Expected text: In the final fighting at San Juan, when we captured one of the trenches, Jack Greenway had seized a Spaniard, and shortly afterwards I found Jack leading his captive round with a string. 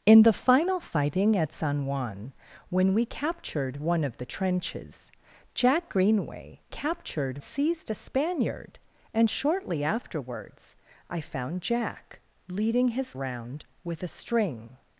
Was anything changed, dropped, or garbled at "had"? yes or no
yes